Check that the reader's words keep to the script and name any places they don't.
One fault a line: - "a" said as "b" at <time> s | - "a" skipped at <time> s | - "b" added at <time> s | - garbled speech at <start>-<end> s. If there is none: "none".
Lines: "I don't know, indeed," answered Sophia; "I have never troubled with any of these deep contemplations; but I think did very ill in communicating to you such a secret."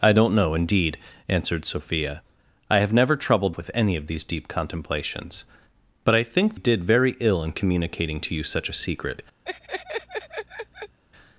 none